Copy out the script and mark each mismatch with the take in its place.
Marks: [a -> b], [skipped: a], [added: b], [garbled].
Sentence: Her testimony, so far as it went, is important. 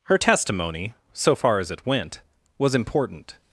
Her testimony, so far as it went, [is -> was] important.